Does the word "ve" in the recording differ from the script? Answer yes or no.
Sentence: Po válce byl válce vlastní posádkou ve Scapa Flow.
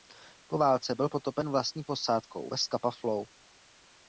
no